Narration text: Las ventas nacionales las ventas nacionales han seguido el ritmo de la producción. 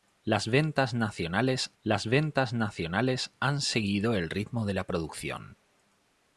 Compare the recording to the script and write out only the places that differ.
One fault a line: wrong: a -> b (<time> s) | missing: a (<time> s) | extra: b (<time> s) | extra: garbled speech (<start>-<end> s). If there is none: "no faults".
no faults